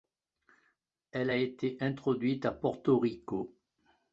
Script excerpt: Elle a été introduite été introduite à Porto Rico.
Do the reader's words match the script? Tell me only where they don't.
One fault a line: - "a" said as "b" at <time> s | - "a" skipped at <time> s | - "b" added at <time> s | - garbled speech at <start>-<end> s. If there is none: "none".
- "été introduite" skipped at 2.5 s